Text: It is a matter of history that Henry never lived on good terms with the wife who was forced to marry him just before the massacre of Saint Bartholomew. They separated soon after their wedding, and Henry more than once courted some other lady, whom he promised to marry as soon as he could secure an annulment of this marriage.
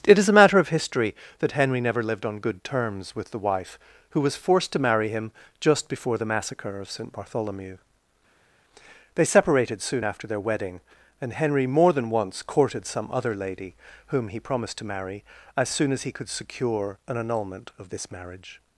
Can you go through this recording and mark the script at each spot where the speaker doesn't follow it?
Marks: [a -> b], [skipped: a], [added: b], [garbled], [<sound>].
It is a matter of history that Henry never lived on good terms with the wife who was forced to marry him just before the massacre of Saint Bartholomew. They separated soon after their wedding, and Henry more than once courted some other lady, whom he promised to marry as soon as he could secure an annulment of this marriage.